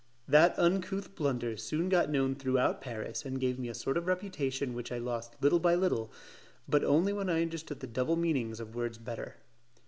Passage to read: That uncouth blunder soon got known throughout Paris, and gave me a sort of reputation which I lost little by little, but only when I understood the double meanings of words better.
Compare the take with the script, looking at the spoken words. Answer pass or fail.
pass